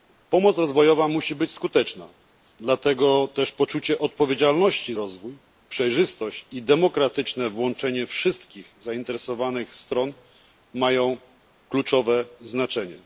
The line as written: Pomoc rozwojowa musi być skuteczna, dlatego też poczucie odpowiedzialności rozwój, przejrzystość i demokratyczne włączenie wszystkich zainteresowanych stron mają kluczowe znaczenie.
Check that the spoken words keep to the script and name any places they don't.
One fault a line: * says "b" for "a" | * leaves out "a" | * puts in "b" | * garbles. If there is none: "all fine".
all fine